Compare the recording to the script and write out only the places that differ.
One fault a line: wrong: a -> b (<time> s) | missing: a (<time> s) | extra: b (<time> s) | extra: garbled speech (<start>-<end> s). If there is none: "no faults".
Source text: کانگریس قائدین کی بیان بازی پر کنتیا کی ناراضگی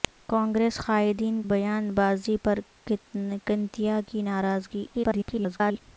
missing: کی (1.4 s)
extra: garbled speech (4.9-5.8 s)